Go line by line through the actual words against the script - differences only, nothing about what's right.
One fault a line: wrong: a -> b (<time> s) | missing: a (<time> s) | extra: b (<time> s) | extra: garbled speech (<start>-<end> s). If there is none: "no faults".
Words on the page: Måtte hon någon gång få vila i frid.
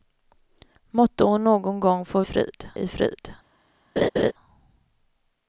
wrong: vila -> frid (2.2 s)